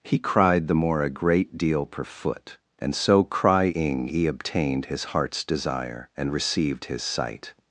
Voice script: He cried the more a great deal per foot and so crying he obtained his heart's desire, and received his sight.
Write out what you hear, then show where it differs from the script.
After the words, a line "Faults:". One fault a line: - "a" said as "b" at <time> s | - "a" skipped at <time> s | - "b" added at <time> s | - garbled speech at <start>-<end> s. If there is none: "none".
He cried the more a great deal per foot and so crying he obtained his heart's desire, and received his sight.
Faults:
none